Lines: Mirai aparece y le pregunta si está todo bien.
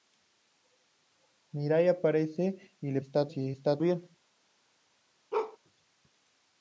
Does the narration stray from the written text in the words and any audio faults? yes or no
yes